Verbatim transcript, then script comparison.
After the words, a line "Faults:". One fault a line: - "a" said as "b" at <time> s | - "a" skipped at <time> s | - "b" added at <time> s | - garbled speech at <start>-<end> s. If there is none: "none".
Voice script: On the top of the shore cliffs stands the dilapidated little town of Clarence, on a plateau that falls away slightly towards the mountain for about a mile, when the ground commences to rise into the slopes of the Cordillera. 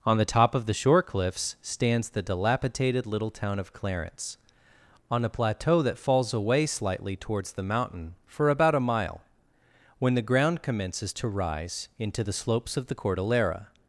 On the top of the shore cliffs stands the dilapidated little town of Clarence, on a plateau that falls away slightly towards the mountain for about a mile, when the ground commences to rise into the slopes of the Cordillera.
Faults:
none